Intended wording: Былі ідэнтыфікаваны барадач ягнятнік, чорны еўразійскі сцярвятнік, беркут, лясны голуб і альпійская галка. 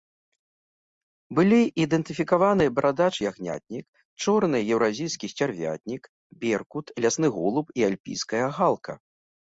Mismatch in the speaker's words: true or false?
false